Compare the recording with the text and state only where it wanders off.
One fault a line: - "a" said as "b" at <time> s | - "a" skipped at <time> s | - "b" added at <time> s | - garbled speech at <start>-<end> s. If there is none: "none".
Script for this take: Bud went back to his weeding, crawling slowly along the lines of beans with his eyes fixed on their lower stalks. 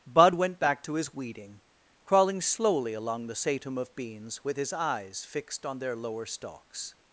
- "lines" said as "satum" at 3.3 s